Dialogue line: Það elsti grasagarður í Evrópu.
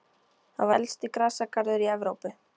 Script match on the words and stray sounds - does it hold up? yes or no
yes